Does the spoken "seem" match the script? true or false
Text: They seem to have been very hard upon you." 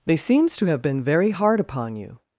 false